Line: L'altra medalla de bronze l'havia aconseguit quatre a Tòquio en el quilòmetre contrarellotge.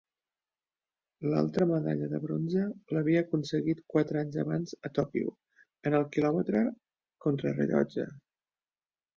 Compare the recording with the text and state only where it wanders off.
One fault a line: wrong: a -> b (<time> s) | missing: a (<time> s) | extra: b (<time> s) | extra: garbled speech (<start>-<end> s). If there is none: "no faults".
extra: anys abans (4.2 s)